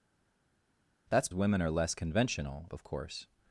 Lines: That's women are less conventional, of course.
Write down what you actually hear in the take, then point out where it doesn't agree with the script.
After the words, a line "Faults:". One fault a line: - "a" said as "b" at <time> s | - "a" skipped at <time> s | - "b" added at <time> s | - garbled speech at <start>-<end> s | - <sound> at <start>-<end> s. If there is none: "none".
That's women are less conventional, of course.
Faults:
none